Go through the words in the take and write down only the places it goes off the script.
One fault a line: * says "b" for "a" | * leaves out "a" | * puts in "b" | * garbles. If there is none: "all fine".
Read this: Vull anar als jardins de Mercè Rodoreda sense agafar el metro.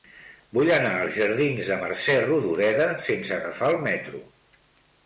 all fine